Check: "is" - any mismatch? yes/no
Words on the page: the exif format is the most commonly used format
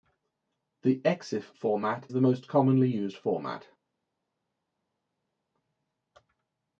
yes